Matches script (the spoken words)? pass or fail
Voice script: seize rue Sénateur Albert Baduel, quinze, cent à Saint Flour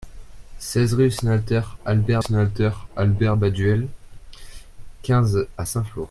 fail